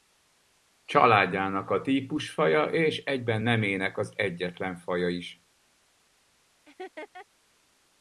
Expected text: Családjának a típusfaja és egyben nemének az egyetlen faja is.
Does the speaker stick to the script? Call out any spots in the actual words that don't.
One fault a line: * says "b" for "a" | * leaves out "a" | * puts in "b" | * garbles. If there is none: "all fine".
all fine